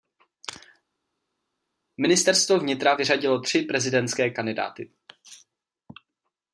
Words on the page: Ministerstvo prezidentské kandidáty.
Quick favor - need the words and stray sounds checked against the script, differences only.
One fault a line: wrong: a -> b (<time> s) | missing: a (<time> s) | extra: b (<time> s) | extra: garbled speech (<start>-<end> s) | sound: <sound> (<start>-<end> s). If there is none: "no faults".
extra: vnitra vyřadilo tři (2.6 s)